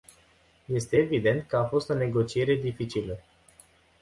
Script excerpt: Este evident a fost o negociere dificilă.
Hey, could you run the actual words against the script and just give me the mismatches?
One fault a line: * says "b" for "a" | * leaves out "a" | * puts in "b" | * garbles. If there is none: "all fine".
* puts in "că"